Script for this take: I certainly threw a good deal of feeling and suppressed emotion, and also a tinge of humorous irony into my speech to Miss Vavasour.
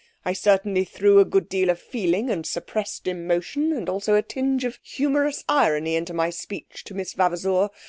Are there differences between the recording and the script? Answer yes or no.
no